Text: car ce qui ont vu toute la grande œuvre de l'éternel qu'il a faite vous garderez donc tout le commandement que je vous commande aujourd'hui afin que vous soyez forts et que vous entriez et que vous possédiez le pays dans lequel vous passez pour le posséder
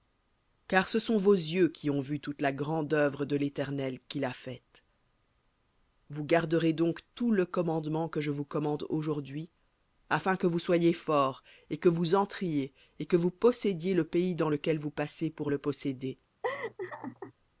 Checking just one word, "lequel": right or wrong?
right